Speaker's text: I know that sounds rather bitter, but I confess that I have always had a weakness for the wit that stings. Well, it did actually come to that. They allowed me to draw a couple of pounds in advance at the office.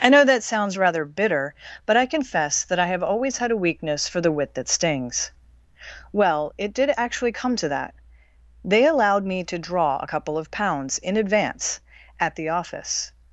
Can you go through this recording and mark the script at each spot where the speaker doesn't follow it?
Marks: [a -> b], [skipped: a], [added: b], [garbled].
I know that sounds rather bitter, but I confess that I have always had a weakness for the wit that stings. Well, it did actually come to that. They allowed me to draw a couple of pounds in advance at the office.